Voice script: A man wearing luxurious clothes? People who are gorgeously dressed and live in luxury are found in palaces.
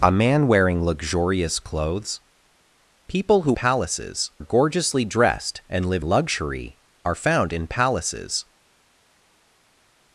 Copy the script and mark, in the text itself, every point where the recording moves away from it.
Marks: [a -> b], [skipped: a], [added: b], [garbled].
A man wearing luxurious clothes? People who [are -> palaces] gorgeously dressed and live [skipped: in] luxury are found in palaces.